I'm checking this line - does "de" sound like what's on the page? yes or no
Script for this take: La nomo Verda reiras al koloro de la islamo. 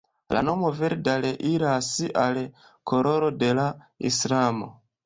yes